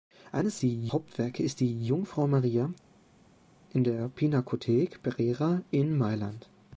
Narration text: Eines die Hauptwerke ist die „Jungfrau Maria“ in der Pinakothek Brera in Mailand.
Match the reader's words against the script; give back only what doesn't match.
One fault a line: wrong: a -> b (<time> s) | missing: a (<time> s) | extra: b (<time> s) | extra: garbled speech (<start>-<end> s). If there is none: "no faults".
no faults